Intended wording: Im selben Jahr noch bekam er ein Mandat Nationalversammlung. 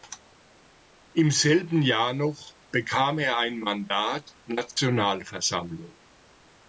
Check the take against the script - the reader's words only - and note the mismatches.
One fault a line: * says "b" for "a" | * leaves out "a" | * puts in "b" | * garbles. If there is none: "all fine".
all fine